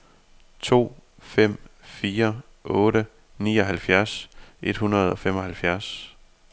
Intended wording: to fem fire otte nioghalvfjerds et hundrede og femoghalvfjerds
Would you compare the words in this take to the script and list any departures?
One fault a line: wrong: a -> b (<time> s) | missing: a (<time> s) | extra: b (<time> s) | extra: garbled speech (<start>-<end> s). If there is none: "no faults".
no faults